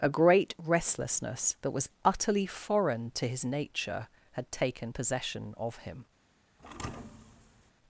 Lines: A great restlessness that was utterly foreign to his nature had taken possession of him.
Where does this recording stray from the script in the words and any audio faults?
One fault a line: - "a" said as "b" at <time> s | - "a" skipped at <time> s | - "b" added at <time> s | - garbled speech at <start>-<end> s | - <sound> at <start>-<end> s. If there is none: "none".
- thud at 6.6-7.7 s